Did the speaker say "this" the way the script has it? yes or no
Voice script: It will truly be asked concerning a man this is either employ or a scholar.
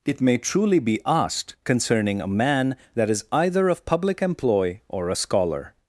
no